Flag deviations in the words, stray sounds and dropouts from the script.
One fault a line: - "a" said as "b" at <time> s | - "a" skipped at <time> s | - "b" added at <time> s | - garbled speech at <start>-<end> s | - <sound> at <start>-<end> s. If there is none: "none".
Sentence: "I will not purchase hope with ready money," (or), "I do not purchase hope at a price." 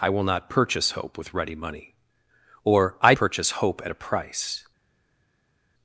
- "do not" skipped at 3.1 s